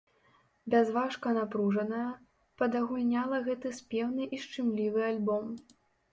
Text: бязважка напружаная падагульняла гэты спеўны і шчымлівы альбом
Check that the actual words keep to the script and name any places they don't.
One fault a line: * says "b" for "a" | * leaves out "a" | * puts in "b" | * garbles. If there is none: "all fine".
all fine